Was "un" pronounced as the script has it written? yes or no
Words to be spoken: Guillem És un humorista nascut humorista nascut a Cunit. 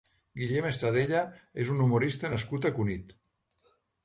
yes